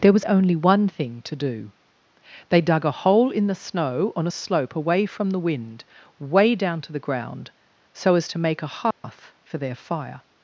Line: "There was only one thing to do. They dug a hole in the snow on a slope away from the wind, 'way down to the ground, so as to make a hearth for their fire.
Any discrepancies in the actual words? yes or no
no